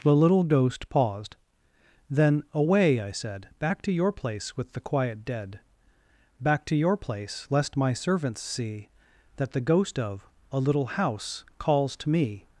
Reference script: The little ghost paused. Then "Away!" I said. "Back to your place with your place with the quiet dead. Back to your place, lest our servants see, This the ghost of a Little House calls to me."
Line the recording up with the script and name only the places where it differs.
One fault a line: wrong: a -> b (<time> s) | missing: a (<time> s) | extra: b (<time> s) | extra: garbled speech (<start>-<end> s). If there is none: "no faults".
missing: your place with (4.7 s)
wrong: our -> my (7.8 s)
wrong: This -> That (9.3 s)